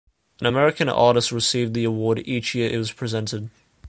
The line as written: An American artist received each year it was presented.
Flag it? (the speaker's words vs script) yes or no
yes